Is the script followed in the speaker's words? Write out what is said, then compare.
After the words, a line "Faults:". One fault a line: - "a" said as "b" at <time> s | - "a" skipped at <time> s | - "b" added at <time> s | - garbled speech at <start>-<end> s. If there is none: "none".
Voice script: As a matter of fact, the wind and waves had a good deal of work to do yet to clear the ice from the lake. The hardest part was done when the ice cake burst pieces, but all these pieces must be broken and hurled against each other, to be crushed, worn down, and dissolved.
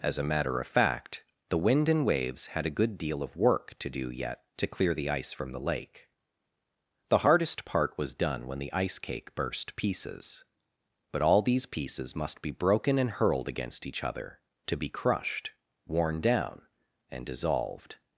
As a matter of fact, the wind and waves had a good deal of work to do yet to clear the ice from the lake. The hardest part was done when the ice cake burst pieces, but all these pieces must be broken and hurled against each other, to be crushed, worn down, and dissolved.
Faults:
none